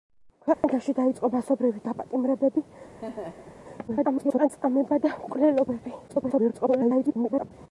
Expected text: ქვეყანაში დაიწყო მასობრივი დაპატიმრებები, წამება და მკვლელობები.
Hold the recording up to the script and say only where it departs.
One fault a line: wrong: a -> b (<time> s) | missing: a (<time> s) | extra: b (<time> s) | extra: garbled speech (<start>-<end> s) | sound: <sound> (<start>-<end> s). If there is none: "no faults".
sound: dropout (0.5-0.6 s)
sound: laugh (3.0-3.6 s)
extra: garbled speech (3.9-4.5 s)
extra: garbled speech (6.1-7.5 s)